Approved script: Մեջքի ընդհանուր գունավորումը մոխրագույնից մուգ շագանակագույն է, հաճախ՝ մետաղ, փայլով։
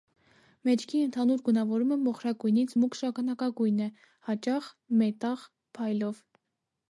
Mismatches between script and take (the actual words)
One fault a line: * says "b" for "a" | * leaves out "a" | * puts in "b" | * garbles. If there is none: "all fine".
all fine